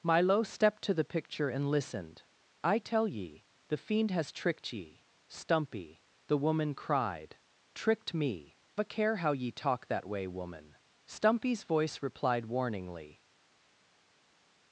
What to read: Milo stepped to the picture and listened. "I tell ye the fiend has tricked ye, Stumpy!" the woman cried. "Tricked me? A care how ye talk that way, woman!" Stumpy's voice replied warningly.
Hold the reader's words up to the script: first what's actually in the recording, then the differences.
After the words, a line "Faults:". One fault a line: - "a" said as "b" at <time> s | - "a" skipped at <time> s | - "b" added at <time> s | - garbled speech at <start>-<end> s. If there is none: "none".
Milo stepped to the picture and listened. "I tell ye the fiend has tricked ye, Stumpy!" the woman cried. "Tricked me? A care how ye talk that way, woman!" Stumpy's voice replied warningly.
Faults:
none